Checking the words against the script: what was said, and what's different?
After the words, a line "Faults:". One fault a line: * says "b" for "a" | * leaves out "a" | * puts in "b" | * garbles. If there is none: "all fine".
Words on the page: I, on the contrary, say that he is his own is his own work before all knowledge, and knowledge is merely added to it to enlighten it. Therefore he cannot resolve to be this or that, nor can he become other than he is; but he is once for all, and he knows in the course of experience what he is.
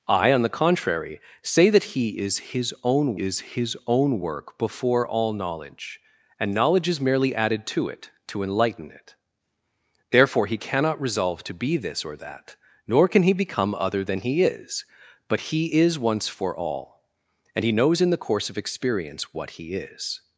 I, on the contrary, say that he is his own is his own work before all knowledge, and knowledge is merely added to it to enlighten it. Therefore he cannot resolve to be this or that, nor can he become other than he is; but he is once for all, and he knows in the course of experience what he is.
Faults:
all fine